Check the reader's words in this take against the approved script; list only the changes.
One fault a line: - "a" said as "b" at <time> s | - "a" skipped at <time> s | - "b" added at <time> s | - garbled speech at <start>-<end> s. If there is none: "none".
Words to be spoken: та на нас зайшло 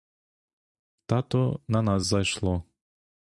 - "то" added at 1.2 s